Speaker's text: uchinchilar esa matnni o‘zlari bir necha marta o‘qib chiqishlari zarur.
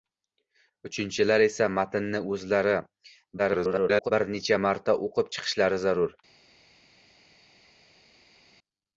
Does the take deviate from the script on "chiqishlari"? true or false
false